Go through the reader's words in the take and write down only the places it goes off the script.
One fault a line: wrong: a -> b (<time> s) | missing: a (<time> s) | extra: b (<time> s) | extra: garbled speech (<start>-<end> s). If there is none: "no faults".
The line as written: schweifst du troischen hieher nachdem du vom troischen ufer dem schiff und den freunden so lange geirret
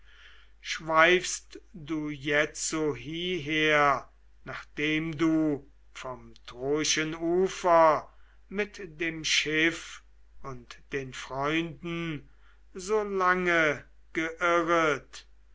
wrong: troischen -> jetzo (2.1 s)
extra: mit (8.5 s)